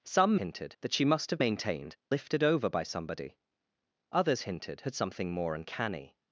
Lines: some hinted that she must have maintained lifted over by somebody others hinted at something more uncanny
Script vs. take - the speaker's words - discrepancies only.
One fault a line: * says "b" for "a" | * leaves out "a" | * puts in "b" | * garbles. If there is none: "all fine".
all fine